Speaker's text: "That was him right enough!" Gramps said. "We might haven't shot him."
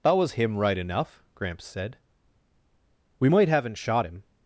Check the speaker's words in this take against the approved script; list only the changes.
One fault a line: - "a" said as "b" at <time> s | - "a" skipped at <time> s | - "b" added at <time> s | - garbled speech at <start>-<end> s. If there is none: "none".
none